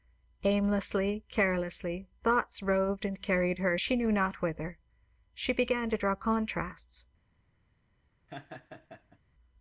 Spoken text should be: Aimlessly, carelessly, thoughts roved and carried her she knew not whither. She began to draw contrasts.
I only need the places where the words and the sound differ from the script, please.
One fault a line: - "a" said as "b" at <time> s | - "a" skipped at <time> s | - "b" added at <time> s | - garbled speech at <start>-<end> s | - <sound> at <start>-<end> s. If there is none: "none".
- laugh at 8.3-9.2 s